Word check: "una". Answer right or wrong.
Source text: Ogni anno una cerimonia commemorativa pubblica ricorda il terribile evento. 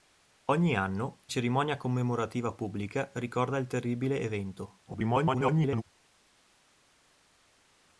wrong